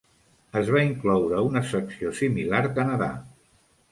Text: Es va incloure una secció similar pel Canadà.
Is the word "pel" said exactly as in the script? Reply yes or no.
no